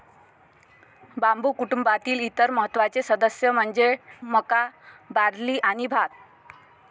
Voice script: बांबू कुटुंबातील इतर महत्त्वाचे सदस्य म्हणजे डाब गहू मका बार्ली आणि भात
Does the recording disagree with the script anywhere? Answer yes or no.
yes